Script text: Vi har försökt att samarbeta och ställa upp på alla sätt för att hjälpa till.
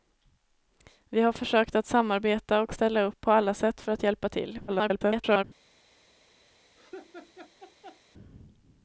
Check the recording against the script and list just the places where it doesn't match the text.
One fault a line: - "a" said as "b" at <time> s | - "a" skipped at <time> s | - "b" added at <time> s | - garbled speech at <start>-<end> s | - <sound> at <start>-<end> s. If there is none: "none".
- garbled speech at 4.7-5.4 s
- laugh at 6.8-8.0 s